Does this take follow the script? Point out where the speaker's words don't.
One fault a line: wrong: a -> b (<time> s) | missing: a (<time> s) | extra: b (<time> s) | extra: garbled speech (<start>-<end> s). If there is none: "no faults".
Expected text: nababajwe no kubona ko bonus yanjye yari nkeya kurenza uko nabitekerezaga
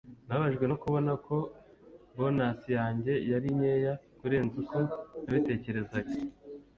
no faults